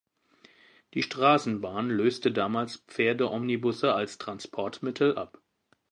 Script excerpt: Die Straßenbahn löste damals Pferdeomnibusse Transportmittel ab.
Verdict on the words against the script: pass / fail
fail